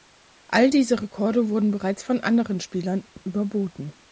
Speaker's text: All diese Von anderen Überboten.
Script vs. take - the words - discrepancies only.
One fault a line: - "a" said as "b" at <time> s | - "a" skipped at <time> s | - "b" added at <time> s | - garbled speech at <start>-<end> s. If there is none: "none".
- "Rekorde wurden bereits" added at 1.0 s
- "Spielern" added at 2.6 s